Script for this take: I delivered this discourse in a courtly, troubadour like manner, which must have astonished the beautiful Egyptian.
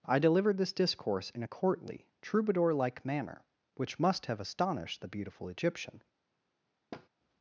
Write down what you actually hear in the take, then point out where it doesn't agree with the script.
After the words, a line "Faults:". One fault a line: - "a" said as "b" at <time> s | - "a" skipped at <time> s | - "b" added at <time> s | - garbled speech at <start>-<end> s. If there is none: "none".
I delivered this discourse in a courtly, troubadour like manner, which must have astonished the beautiful Egyptian.
Faults:
none